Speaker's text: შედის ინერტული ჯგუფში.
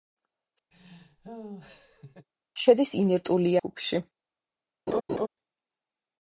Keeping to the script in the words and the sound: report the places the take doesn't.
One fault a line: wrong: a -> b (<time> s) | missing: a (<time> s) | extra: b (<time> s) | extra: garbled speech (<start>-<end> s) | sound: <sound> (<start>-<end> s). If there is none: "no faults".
sound: laugh (0.7-2.3 s)
sound: laugh (4.9-5.3 s)